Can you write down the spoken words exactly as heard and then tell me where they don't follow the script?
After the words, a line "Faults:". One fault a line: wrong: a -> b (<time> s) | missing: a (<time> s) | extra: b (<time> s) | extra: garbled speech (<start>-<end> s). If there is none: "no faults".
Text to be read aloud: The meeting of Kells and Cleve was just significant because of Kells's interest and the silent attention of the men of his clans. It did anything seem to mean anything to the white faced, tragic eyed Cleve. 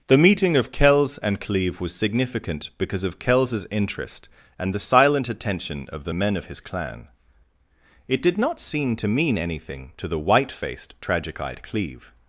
The meeting of Kells and Cleve was significant because of Kells's interest and the silent attention of the men of his clan. It did not seem to mean anything to the white faced, tragic eyed Cleve.
Faults:
missing: just (1.9 s)
wrong: clans -> clan (6.6 s)
wrong: anything -> not (8.4 s)